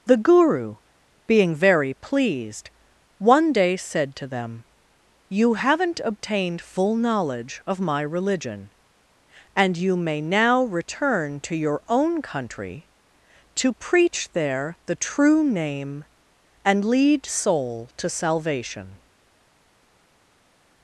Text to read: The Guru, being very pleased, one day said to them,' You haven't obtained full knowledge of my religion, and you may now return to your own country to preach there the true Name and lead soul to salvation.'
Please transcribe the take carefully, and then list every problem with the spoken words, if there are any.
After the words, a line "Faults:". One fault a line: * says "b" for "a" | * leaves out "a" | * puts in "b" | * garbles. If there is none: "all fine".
The Guru, being very pleased, one day said to them,' You haven't obtained full knowledge of my religion, and you may now return to your own country to preach there the true Name and lead soul to salvation.'
Faults:
all fine